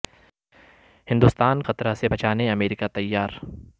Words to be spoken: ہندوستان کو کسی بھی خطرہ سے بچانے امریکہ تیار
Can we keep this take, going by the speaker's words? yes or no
no